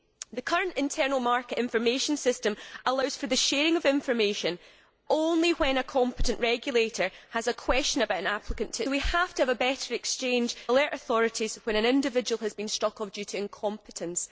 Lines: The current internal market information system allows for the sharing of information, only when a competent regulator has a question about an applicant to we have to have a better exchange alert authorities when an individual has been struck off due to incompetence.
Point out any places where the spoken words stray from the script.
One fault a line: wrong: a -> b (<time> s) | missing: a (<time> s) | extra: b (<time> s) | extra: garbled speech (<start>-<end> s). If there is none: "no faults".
no faults